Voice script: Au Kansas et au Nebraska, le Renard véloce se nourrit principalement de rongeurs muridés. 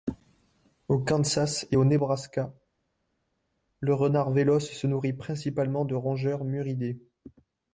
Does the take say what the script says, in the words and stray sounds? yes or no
yes